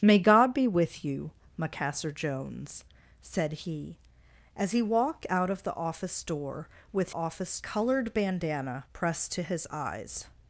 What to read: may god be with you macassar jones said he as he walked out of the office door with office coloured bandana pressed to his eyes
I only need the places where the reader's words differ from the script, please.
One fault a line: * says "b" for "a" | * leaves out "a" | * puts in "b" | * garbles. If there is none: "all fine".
all fine